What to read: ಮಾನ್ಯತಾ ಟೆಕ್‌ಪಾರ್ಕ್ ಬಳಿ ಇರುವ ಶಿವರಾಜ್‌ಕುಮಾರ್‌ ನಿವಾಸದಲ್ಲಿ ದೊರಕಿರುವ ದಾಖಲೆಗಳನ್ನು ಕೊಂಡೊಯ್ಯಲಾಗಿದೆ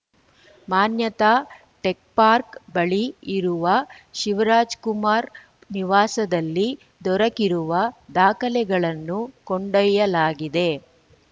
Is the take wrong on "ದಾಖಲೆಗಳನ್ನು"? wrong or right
right